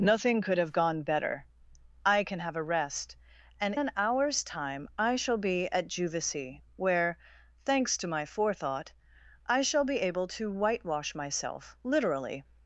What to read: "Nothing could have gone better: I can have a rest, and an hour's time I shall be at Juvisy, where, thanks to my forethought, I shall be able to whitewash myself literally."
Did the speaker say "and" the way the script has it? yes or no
yes